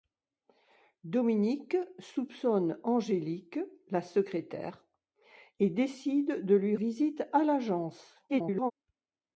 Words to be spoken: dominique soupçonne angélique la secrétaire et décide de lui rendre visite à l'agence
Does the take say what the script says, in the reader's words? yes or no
no